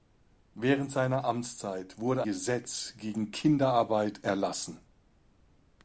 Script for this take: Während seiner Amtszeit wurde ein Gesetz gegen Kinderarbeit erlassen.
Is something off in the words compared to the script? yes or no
yes